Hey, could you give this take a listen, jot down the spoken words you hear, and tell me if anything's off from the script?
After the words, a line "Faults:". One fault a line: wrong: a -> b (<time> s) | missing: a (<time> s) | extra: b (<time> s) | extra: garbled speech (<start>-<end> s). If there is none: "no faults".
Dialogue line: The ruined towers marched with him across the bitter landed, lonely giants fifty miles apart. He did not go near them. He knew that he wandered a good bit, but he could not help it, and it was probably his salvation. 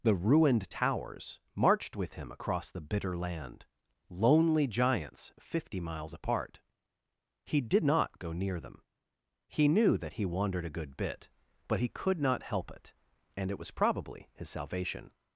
The ruined towers marched with him across the bitter land, lonely giants fifty miles apart. He did not go near them. He knew that he wandered a good bit, but he could not help it, and it was probably his salvation.
Faults:
wrong: landed -> land (3.2 s)